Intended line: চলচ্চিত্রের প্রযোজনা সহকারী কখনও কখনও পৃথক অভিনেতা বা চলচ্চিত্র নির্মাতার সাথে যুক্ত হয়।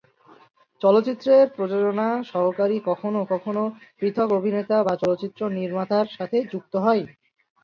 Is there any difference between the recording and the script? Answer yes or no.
no